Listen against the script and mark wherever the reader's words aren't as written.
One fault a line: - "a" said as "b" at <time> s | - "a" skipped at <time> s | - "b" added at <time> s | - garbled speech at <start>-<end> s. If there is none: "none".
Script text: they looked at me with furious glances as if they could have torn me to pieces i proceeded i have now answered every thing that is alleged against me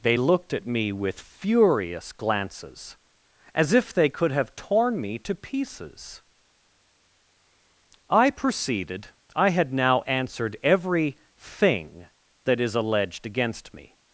- "have" said as "had" at 9.5 s